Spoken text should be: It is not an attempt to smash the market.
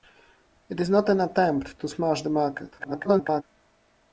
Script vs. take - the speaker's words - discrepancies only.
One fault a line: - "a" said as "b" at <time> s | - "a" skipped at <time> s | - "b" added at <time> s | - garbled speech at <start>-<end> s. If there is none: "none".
- garbled speech at 2.8-3.4 s